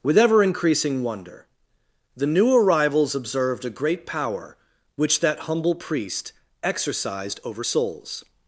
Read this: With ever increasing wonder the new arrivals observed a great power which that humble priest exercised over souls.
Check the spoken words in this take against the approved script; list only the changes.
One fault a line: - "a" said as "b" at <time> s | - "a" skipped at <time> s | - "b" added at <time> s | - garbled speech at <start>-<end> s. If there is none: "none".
none